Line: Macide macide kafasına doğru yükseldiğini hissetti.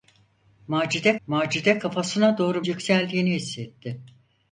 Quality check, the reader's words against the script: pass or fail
pass